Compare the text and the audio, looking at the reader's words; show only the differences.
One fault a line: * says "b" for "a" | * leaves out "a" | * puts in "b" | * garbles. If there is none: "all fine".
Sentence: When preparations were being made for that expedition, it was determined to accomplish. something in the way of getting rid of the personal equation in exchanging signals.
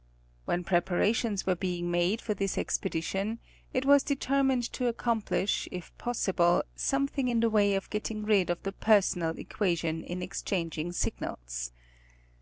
* says "this" for "that"
* puts in "if possible"